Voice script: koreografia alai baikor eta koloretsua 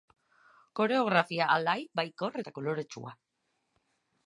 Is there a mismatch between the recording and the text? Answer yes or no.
no